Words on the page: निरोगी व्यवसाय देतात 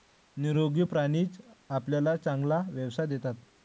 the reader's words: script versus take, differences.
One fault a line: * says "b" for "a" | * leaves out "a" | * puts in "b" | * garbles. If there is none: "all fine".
* puts in "प्राणीच आपल्याला चांगला"